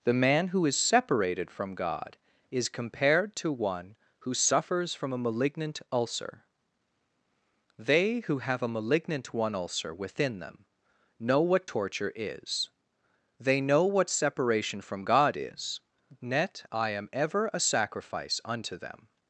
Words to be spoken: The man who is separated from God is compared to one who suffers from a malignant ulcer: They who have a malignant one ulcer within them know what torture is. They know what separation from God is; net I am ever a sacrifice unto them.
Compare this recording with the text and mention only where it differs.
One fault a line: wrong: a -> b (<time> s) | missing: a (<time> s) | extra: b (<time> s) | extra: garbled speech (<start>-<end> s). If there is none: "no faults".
no faults